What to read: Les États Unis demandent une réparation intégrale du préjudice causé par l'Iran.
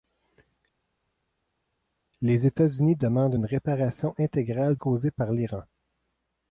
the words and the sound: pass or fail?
fail